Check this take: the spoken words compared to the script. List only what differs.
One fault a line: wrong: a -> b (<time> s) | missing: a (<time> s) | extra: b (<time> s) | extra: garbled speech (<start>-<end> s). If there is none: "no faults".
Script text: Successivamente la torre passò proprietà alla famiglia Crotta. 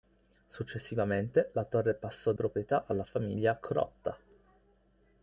no faults